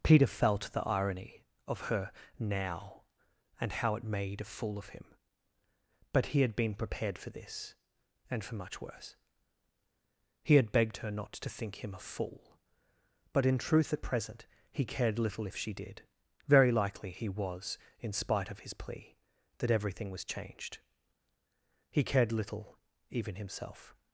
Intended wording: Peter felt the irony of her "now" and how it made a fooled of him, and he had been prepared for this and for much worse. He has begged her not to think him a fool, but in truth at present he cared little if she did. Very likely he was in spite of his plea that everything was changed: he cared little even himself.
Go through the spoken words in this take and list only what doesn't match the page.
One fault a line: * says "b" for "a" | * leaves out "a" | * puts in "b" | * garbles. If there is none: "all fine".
* says "fool" for "fooled"
* says "but" for "and"
* says "had" for "has"